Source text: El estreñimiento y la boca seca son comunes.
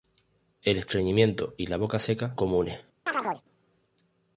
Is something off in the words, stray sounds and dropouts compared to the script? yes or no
yes